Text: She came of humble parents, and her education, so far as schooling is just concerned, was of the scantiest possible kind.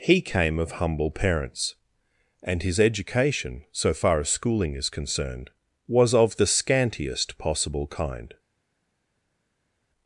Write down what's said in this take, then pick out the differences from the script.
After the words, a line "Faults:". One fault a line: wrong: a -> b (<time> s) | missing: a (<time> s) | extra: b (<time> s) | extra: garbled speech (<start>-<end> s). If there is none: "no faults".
He came of humble parents, and his education, so far as schooling is concerned, was of the scantiest possible kind.
Faults:
wrong: She -> He (0.0 s)
wrong: her -> his (2.6 s)
missing: just (4.9 s)